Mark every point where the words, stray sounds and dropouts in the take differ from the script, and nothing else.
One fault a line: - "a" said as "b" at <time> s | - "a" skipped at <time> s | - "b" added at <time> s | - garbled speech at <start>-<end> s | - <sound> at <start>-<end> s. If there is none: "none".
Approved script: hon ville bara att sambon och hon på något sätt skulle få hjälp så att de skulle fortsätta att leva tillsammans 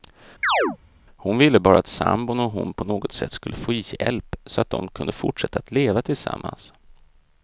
- chirp at 0.4-0.8 s
- "skulle" said as "kunde" at 4.9 s